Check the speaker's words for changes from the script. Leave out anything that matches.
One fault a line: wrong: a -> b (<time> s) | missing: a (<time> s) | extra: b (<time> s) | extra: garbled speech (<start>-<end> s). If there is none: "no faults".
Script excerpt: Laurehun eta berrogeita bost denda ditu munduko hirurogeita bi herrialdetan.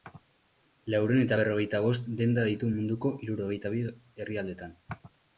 no faults